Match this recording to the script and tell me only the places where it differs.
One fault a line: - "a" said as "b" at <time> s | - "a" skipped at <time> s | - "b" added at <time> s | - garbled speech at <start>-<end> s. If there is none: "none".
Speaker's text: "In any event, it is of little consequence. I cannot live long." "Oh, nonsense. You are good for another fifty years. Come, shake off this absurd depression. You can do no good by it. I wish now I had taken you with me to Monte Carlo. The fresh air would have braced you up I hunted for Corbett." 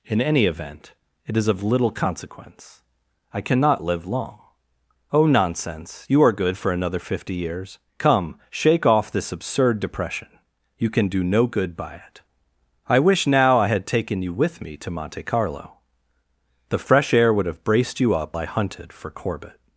none